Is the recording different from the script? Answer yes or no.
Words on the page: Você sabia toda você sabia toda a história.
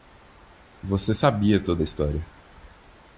yes